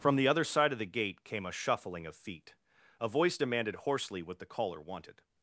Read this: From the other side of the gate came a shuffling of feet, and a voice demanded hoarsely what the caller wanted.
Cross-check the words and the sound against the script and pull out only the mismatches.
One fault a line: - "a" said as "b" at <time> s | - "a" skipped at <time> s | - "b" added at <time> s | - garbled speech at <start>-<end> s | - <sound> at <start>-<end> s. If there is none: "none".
- "and" skipped at 2.5 s